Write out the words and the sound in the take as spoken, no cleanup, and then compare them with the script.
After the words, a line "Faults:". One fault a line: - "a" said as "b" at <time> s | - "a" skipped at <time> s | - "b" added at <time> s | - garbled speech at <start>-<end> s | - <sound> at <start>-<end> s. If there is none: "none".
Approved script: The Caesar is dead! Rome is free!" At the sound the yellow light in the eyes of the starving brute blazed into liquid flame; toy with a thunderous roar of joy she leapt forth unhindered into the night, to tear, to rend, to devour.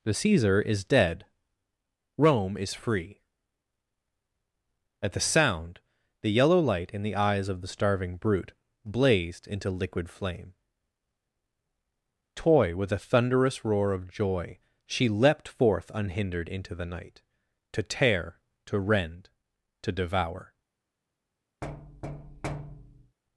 The Caesar is dead! Rome is free!" At the sound the yellow light in the eyes of the starving brute blazed into liquid flame; toy with a thunderous roar of joy she leapt forth unhindered into the night, to tear, to rend, to devour.
Faults:
- thud at 21.6-23.2 s